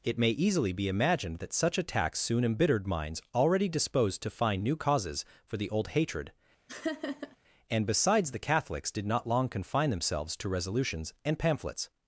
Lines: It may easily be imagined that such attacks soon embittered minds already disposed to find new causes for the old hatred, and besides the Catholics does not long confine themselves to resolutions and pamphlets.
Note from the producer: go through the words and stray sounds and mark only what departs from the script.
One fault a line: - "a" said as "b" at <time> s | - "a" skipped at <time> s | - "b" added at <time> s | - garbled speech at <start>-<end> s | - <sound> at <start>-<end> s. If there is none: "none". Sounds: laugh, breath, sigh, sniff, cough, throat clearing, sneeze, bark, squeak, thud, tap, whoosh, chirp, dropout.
- laugh at 6.7-7.4 s
- "does" said as "did" at 8.9 s